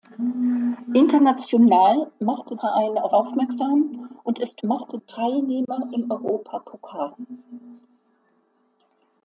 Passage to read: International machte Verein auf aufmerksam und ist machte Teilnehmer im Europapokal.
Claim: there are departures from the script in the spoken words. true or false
false